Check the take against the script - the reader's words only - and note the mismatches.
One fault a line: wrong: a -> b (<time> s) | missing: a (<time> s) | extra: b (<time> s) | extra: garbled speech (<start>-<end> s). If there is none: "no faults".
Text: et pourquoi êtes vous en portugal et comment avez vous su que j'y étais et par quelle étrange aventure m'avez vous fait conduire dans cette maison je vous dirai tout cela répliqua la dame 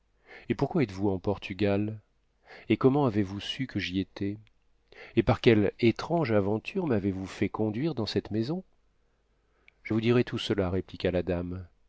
no faults